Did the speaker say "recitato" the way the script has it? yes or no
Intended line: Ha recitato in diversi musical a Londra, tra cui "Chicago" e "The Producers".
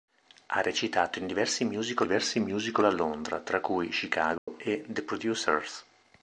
yes